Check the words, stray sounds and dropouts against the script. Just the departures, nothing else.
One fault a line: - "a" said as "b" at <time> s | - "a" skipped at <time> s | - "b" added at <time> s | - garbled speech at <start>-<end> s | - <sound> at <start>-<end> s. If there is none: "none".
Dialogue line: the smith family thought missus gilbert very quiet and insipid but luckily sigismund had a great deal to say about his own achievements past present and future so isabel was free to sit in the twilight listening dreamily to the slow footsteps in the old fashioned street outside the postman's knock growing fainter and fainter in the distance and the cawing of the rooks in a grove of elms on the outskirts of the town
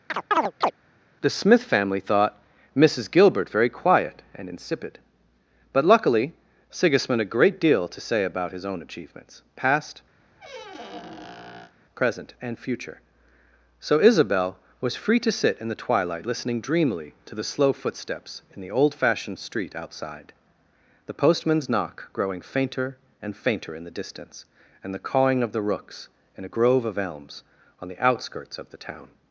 - chirp at 0.1-0.7 s
- "had" skipped at 7.2 s
- squeak at 10.2-11.7 s